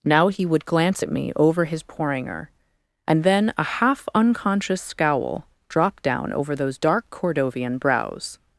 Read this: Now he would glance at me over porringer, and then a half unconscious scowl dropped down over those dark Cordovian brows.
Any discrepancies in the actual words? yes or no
yes